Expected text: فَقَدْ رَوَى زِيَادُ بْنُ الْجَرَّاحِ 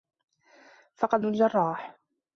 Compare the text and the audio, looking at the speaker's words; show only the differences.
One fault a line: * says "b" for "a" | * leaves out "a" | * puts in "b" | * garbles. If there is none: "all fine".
* leaves out "رَوَى زِيَادُ بْنُ"